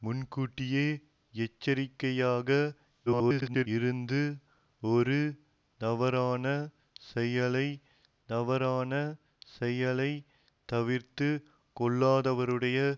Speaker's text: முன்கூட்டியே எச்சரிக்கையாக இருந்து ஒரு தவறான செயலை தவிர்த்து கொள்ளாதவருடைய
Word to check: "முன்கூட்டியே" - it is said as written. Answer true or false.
true